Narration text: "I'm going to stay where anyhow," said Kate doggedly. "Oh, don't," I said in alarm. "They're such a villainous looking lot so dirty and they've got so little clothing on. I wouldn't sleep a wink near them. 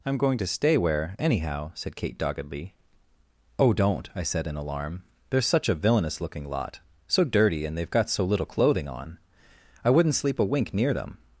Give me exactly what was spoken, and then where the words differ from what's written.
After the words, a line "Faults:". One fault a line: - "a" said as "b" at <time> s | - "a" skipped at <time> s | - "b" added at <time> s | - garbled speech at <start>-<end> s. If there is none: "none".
"I'm going to stay where anyhow," said Kate doggedly. "Oh, don't," I said in alarm. "They're such a villainous looking lot so dirty and they've got so little clothing on. I wouldn't sleep a wink near them.
Faults:
none